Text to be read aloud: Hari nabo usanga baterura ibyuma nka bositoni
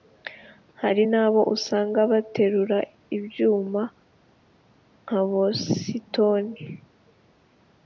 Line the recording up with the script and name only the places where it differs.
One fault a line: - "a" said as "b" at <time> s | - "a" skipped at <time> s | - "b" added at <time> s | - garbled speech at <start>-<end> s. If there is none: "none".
none